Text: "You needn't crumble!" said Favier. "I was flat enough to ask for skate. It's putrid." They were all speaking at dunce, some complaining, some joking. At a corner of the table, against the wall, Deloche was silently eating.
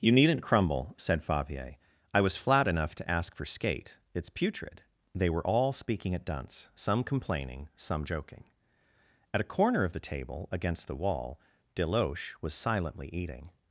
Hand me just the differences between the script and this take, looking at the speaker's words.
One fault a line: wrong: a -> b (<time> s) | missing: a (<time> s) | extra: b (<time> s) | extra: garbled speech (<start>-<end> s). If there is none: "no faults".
no faults